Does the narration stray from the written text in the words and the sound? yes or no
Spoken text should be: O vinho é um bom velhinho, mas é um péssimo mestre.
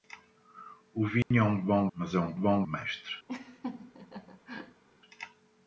yes